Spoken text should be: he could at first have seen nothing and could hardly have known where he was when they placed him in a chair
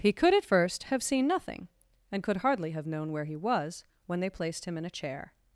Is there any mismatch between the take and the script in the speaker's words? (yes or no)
no